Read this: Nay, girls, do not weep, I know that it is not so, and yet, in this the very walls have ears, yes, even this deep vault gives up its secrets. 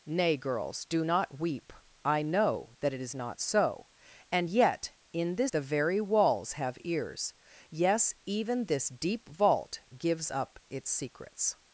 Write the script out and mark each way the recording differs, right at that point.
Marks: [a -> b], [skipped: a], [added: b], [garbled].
Nay, girls, do not weep, I know that it is not so, and yet, in this the very walls have ears, yes, even this deep vault gives up its secrets.